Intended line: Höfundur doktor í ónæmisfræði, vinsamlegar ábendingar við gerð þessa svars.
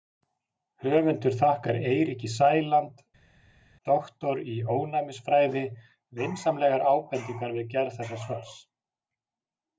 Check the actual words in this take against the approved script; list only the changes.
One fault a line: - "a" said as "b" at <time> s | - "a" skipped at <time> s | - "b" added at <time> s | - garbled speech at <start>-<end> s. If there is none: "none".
- "þakkar Eiríki Sæland" added at 1.4 s